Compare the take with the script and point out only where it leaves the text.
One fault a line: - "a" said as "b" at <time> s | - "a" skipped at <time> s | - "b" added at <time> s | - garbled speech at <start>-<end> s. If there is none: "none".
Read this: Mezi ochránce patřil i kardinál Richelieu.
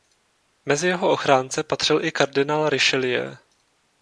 - "jeho" added at 0.9 s